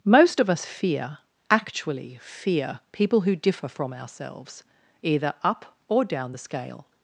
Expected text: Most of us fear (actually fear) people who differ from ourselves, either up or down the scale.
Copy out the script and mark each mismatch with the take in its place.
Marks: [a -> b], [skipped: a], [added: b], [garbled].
Most of us fear (actually fear) people who differ from ourselves, either up or down the scale.